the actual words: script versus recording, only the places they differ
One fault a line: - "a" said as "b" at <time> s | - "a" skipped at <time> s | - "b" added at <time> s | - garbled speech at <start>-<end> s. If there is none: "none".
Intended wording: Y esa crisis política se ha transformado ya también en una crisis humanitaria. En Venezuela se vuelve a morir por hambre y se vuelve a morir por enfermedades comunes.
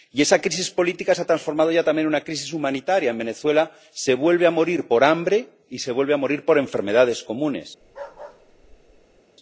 none